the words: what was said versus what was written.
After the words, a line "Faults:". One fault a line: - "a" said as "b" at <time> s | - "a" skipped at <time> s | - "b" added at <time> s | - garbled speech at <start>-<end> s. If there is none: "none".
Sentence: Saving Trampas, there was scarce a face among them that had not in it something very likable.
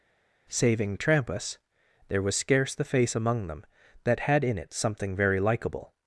Saving Trampas, there was scarce the face among them that had in it something very likable.
Faults:
- "a" said as "the" at 2.7 s
- "not" skipped at 4.4 s